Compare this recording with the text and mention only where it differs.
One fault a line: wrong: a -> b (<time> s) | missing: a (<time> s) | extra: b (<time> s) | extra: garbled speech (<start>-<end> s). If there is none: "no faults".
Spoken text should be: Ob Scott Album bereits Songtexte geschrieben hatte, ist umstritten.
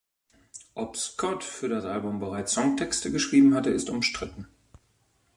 extra: für das (1.4 s)